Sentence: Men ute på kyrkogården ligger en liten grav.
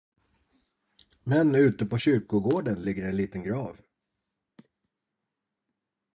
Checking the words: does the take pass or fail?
pass